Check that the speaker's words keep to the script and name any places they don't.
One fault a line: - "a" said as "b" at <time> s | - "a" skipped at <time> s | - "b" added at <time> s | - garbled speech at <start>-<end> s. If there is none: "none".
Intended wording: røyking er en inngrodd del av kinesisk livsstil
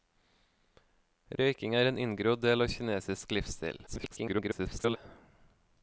- garbled speech at 3.9-5.0 s